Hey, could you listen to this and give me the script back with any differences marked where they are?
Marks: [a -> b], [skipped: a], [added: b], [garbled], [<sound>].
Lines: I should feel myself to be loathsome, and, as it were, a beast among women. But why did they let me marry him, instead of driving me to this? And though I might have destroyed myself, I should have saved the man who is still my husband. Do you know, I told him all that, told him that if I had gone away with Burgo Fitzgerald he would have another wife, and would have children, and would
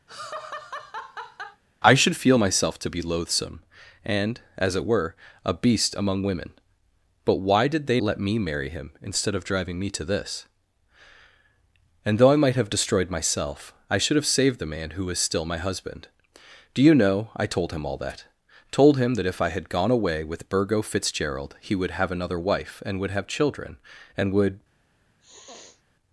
[laugh] I should feel myself to be loathsome, and, as it were, a beast among women. But why did they let me marry him, instead of driving me to this? And though I might have destroyed myself, I should have saved the man who is still my husband. Do you know, I told him all that, told him that if I had gone away with Burgo Fitzgerald he would have another wife, and would have children, and would [sniff]